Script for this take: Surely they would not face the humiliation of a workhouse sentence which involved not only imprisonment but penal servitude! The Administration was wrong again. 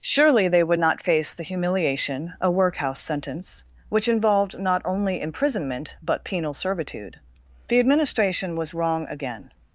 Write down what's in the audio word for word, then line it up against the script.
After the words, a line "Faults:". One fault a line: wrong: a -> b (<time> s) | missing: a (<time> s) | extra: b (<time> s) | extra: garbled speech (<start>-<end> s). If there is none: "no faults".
Surely they would not face the humiliation a workhouse sentence which involved not only imprisonment but penal servitude! The Administration was wrong again.
Faults:
missing: of (2.3 s)